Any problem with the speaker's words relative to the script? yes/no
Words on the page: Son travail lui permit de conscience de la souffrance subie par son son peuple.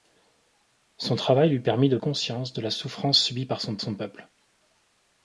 no